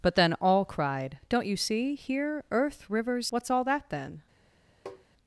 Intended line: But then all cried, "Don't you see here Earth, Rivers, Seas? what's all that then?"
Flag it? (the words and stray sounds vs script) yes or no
yes